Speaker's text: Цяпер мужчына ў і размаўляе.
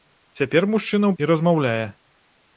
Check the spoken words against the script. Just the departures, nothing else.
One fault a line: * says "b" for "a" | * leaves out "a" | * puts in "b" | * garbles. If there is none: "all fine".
all fine